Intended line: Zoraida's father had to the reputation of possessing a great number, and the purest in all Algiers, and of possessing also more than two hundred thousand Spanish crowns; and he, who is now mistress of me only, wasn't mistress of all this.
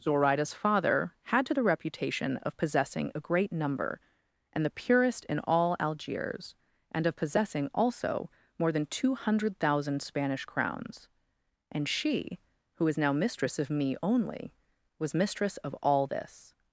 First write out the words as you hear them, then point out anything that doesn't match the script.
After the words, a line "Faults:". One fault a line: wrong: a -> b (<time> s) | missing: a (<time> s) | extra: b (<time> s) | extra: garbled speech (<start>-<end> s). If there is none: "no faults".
Zoraida's father had to the reputation of possessing a great number, and the purest in all Algiers, and of possessing also more than two hundred thousand Spanish crowns; and she, who is now mistress of me only, was mistress of all this.
Faults:
wrong: he -> she (11.9 s)
wrong: wasn't -> was (15.0 s)